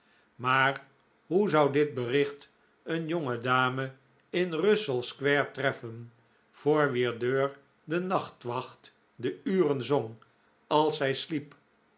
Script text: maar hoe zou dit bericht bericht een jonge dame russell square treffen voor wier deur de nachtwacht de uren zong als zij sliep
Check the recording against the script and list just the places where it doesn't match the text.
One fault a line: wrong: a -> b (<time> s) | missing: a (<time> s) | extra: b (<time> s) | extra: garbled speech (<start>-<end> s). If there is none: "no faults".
missing: bericht (2.5 s)
extra: in (4.3 s)